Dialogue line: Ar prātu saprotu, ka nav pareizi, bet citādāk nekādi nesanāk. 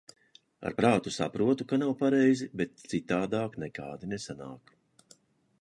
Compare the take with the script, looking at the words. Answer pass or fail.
pass